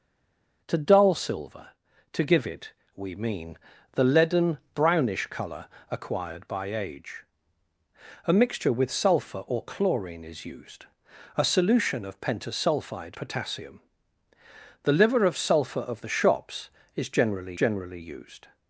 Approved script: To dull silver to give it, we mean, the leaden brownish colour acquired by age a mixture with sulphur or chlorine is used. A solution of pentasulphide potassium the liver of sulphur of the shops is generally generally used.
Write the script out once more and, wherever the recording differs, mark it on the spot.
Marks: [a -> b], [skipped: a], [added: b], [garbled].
To dull silver to give it, we mean, the leaden brownish colour acquired by age a mixture with sulphur or chlorine is used. A solution of pentasulphide potassium the liver of sulphur of the shops is generally generally used.